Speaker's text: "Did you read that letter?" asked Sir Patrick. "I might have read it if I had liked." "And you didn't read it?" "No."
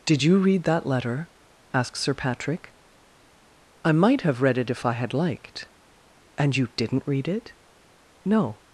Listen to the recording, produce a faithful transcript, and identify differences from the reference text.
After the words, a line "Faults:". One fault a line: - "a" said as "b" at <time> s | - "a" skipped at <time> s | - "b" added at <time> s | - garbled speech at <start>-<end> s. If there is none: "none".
"Did you read that letter?" asked Sir Patrick. "I might have read it if I had liked." "And you didn't read it?" "No."
Faults:
none